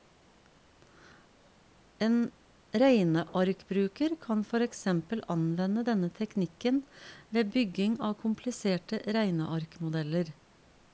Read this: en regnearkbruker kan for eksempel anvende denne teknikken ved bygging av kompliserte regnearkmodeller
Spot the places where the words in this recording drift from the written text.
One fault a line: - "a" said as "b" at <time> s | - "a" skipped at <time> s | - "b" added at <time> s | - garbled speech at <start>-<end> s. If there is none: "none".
none